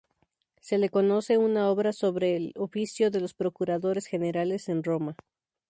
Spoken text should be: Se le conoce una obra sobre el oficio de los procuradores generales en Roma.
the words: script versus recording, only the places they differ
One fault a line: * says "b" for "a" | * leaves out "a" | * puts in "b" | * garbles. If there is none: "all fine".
all fine